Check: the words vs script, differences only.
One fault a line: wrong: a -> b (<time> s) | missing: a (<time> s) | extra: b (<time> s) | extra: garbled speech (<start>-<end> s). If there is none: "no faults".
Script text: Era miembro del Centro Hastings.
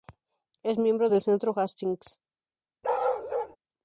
wrong: Era -> Es (0.6 s)